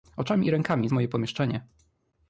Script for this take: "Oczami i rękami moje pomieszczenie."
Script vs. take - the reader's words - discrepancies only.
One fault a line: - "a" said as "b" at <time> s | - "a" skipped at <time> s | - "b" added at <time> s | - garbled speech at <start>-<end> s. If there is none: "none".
none